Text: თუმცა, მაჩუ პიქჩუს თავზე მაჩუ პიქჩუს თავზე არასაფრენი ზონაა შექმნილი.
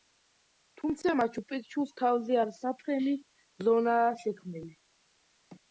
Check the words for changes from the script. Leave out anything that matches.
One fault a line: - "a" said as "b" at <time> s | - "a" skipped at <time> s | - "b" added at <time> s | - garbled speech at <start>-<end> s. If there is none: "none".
- "მაჩუ პიქჩუს თავზე" skipped at 2.4 s